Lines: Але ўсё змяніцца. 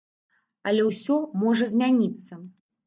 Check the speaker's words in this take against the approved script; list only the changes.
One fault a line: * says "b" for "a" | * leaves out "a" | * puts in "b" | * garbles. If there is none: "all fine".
* puts in "можа"